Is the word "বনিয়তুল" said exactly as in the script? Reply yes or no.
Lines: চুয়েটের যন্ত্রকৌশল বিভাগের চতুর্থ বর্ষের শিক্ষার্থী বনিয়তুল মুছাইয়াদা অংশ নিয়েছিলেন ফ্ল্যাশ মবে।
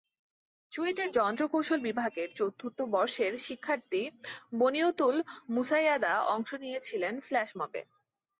yes